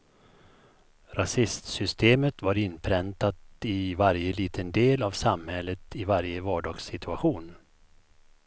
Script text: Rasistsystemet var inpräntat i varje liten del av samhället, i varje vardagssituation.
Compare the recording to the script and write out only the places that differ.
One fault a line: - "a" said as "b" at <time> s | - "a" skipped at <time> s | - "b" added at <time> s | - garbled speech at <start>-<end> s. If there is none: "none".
none